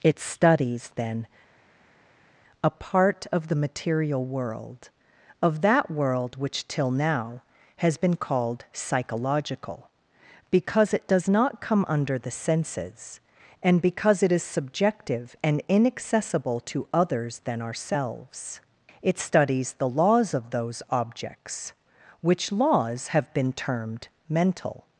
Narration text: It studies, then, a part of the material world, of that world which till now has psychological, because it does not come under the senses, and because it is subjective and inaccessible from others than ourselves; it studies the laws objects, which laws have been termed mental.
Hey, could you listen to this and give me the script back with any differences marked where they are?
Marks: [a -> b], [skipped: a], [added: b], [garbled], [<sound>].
It studies, then, a part of the material world, of that world which till now has [added: been called] psychological, because it does not come under the senses, and because it is subjective and inaccessible [from -> to] others than ourselves; it studies the laws [added: of those] objects, which laws have been termed mental.